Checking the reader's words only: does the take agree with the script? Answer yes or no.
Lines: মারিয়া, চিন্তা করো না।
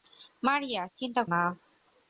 no